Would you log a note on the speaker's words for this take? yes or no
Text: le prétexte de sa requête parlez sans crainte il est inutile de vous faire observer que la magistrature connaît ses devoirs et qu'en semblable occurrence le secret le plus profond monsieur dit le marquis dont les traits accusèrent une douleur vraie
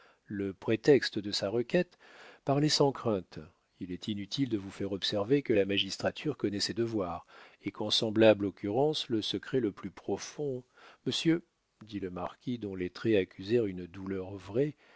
no